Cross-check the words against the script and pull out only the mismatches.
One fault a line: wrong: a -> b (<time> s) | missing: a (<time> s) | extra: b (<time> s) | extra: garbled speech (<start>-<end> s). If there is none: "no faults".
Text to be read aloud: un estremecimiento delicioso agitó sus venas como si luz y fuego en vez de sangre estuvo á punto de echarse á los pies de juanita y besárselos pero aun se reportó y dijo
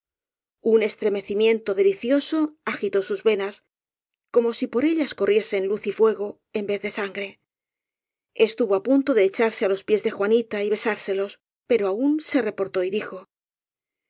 extra: por ellas corriesen (4.7 s)